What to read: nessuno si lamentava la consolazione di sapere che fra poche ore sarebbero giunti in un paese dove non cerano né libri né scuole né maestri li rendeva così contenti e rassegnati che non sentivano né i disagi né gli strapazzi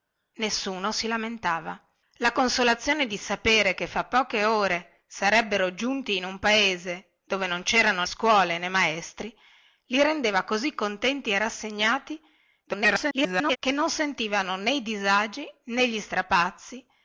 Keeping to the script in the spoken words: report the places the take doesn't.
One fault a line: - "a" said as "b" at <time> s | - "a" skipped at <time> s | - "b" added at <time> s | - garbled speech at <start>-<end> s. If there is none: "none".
- "né libri né" skipped at 8.0 s
- garbled speech at 12.6-13.6 s